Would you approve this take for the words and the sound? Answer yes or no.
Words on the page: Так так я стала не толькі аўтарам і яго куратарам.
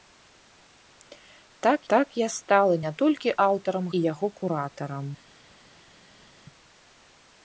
yes